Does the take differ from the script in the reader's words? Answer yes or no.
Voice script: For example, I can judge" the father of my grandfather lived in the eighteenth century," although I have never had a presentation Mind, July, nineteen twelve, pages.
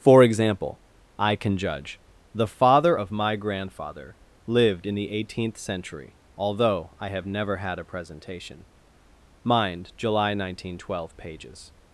no